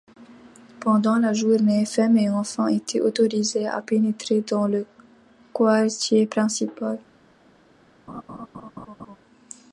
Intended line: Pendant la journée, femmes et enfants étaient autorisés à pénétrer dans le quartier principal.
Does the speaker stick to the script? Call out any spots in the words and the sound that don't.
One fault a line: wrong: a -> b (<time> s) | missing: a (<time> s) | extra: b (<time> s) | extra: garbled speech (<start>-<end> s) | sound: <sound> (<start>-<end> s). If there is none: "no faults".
sound: laugh (8.1-9.2 s)